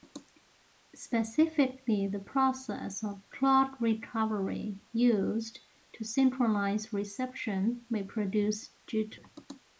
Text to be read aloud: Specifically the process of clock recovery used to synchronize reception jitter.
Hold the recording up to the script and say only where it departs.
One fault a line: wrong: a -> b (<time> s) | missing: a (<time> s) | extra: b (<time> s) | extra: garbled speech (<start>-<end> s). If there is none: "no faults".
extra: may produce (7.9 s)